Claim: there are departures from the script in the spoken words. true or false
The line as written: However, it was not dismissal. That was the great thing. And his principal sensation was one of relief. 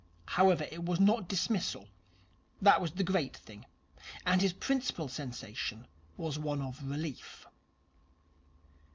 false